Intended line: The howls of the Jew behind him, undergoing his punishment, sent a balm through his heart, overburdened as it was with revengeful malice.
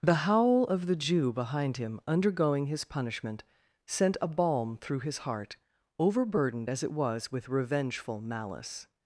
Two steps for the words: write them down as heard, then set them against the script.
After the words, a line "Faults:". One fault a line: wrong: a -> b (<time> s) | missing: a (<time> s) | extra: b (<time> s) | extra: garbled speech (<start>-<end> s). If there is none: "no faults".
The howl of the Jew behind him, undergoing his punishment, sent a balm through his heart, overburdened as it was with revengeful malice.
Faults:
wrong: howls -> howl (0.2 s)